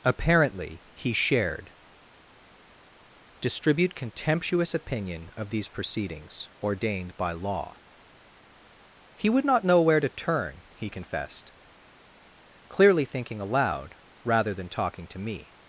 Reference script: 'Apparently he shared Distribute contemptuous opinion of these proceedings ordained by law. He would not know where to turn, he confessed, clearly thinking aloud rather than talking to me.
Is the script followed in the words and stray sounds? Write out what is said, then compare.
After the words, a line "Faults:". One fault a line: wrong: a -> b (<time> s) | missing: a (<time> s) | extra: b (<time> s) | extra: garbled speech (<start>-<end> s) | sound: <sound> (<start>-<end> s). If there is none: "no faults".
'Apparently he shared Distribute contemptuous opinion of these proceedings ordained by law. He would not know where to turn, he confessed, clearly thinking aloud rather than talking to me.
Faults:
no faults